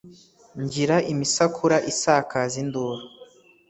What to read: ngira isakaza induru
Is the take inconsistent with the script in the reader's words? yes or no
yes